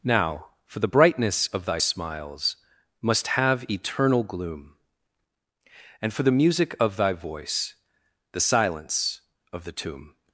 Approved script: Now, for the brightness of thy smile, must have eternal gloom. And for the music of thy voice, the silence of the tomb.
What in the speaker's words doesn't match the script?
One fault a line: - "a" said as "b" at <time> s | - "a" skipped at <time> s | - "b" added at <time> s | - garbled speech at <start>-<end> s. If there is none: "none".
- "smile" said as "smiles" at 1.8 s